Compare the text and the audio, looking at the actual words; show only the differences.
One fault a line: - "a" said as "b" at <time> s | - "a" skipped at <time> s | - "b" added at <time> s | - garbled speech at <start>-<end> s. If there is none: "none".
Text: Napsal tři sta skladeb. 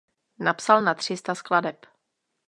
- "na" added at 0.8 s